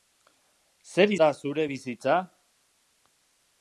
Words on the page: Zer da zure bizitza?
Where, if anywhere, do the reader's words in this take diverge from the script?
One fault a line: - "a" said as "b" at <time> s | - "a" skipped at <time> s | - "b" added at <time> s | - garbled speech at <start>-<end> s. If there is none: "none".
none